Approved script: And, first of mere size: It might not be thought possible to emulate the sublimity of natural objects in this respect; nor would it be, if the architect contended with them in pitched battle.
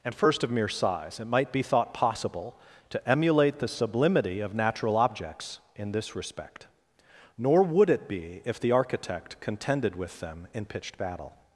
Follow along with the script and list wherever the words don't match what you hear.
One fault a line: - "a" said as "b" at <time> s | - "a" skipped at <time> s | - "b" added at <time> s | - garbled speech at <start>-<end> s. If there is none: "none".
- "not" skipped at 1.5 s